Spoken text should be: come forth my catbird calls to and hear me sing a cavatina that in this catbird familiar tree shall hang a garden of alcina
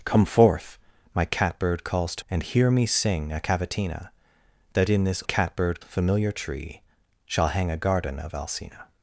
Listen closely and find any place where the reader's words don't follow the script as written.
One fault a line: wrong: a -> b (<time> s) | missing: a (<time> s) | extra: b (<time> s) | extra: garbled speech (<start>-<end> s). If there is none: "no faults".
no faults